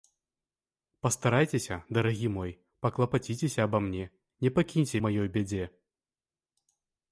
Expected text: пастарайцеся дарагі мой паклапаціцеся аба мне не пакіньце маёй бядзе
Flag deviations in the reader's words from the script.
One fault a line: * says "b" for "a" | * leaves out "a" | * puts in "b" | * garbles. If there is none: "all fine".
all fine